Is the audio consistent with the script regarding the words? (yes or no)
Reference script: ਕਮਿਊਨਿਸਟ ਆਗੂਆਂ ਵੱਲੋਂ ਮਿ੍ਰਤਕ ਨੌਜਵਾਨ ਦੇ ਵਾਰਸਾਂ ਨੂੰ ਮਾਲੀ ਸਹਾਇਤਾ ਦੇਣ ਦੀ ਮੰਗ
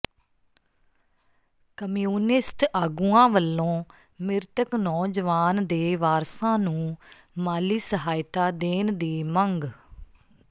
yes